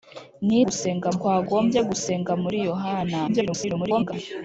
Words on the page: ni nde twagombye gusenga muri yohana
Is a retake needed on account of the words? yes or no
yes